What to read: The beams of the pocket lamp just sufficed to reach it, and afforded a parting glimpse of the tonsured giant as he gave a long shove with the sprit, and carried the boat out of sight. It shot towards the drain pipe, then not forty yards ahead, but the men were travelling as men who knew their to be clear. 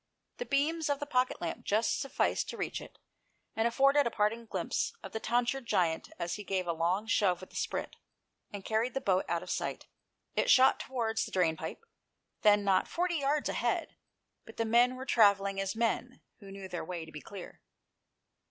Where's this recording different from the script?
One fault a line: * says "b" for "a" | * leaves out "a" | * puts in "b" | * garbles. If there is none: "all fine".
* puts in "way"